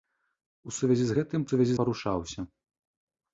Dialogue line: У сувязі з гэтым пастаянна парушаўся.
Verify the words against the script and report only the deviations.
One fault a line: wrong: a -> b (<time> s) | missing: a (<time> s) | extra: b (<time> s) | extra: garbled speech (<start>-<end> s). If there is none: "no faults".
wrong: пастаянна -> сувязі (1.5 s)